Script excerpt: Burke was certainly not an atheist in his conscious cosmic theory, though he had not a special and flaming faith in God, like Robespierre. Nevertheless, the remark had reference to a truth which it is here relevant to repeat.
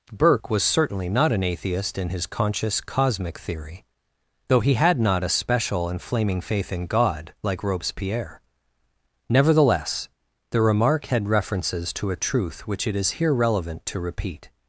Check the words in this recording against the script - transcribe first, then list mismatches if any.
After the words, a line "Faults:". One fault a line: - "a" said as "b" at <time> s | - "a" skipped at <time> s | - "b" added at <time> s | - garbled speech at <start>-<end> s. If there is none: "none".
Burke was certainly not an atheist in his conscious cosmic theory, though he had not a special and flaming faith in God, like Robespierre. Nevertheless, the remark had references to a truth which it is here relevant to repeat.
Faults:
- "reference" said as "references" at 11.3 s